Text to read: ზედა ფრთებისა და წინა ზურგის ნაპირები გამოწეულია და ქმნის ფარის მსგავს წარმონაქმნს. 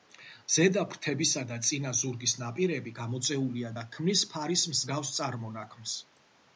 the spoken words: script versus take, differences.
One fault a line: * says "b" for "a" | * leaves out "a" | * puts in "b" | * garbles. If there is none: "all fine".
all fine